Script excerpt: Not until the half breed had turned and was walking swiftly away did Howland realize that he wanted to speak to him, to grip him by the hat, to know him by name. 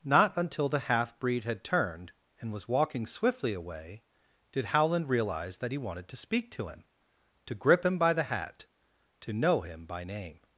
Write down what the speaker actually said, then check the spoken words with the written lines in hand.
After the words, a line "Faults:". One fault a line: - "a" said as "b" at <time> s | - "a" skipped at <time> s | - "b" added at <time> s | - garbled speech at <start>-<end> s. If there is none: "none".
Not until the half breed had turned and was walking swiftly away did Howland realize that he wanted to speak to him, to grip him by the hat, to know him by name.
Faults:
none